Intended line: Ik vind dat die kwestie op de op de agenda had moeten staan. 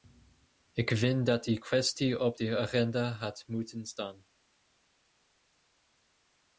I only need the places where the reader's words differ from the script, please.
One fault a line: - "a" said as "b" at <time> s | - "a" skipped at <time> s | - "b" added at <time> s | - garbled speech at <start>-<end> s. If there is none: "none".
- "op de" skipped at 2.6 s